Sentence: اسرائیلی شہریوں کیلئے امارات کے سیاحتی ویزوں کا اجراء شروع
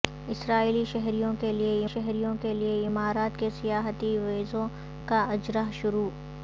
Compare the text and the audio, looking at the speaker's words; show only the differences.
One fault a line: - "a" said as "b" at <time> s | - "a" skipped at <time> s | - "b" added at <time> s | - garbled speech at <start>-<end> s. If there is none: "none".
- "شہریوں کیلئے" added at 1.9 s